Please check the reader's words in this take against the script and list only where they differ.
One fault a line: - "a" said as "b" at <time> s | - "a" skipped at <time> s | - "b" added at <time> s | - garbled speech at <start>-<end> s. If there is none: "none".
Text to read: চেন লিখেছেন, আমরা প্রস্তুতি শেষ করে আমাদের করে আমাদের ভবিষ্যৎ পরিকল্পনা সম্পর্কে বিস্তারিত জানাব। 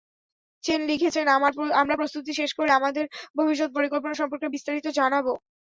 - "করে আমাদের" skipped at 3.1 s